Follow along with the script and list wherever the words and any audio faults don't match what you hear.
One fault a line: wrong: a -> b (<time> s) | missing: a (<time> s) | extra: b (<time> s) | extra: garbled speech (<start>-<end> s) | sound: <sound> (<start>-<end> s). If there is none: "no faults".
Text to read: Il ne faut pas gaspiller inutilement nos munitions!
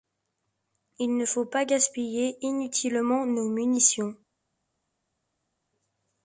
no faults